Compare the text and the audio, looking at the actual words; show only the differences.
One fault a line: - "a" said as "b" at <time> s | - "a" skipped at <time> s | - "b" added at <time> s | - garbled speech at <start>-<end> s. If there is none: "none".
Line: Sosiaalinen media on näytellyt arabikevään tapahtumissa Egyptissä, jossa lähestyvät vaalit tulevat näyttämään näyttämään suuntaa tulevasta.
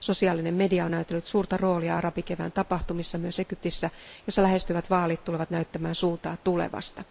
- "suurta roolia" added at 1.3 s
- "myös" added at 3.2 s
- "näyttämään" skipped at 5.9 s